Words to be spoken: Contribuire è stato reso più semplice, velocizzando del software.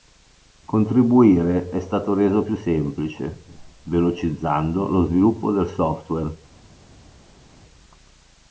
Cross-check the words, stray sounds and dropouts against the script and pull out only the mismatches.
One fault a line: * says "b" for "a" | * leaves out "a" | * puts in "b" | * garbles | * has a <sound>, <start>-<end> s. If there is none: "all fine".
* puts in "lo sviluppo"